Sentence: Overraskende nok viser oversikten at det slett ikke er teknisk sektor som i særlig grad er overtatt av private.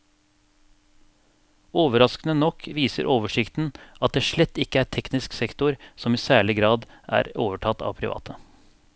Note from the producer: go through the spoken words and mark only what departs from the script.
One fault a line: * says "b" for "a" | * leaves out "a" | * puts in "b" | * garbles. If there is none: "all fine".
all fine